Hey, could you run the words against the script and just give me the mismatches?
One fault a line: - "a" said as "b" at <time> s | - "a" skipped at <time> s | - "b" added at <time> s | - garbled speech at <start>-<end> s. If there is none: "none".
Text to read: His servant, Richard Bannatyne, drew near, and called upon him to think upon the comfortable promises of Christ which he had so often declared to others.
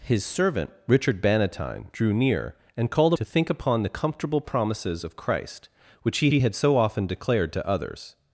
- "upon him" skipped at 3.1 s
- "he" added at 6.3 s